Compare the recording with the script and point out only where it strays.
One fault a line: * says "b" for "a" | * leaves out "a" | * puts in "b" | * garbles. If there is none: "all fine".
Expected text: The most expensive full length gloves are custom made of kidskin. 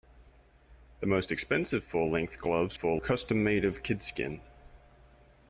* says "full" for "are"